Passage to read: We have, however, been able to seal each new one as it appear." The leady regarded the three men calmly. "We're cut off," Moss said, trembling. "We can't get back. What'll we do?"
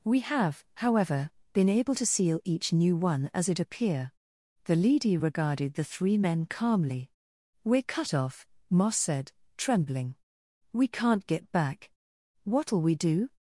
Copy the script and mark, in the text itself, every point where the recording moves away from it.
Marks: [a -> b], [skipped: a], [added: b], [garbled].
We have, however, been able to seal each new one as it appear." The leady regarded the three men calmly. "We're cut off," Moss said, trembling. "We can't get back. What'll we do?"